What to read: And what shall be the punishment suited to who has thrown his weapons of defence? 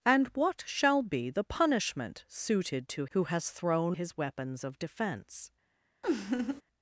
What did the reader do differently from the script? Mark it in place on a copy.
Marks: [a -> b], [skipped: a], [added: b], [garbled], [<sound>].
And what shall be the punishment suited to who has thrown his weapons of defence? [laugh]